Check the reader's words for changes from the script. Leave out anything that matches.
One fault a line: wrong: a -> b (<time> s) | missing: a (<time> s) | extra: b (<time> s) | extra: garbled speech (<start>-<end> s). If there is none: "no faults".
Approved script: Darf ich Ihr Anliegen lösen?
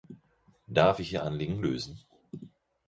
no faults